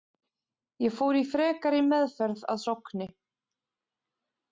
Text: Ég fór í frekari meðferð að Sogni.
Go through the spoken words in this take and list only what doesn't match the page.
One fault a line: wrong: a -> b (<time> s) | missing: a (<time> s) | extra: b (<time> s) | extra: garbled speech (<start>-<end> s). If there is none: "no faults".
no faults